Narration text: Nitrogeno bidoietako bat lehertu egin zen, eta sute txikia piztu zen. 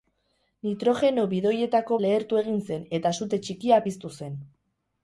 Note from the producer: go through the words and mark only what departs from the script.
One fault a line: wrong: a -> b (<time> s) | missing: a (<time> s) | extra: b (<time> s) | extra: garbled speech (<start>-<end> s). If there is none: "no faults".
missing: bat (2.0 s)